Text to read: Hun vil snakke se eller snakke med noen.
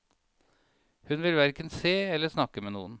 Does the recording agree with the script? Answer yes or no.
no